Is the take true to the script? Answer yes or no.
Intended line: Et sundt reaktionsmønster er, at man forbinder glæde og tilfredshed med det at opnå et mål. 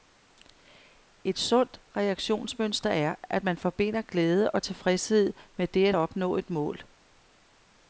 yes